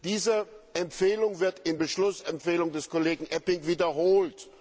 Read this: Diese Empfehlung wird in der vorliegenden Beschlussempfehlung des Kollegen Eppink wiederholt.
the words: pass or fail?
fail